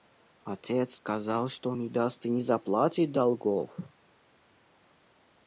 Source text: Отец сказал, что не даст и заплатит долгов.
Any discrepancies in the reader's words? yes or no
yes